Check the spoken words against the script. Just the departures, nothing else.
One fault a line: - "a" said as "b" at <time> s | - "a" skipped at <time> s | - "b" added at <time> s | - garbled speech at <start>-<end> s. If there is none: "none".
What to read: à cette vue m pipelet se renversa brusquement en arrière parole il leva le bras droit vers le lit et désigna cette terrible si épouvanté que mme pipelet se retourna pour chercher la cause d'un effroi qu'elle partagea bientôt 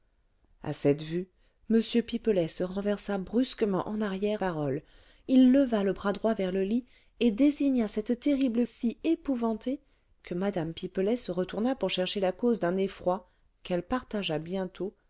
none